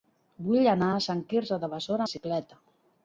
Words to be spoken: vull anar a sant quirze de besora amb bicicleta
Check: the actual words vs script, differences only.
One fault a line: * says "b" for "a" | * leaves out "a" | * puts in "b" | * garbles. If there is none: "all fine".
* leaves out "amb"